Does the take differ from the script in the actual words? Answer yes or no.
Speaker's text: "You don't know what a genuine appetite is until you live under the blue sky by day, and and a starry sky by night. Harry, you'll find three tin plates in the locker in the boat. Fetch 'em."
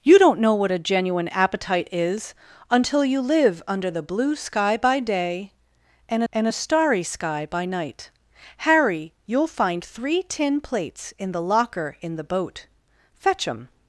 no